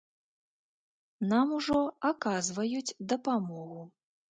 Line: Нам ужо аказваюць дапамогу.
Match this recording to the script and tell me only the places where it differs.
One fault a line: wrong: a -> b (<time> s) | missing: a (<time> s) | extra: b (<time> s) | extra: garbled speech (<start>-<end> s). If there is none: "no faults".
no faults